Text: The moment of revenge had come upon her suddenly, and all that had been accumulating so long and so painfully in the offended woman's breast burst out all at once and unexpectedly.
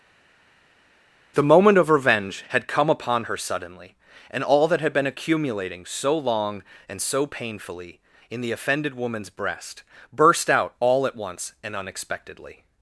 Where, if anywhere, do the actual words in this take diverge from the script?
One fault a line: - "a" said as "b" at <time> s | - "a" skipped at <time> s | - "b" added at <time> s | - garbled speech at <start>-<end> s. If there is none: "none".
none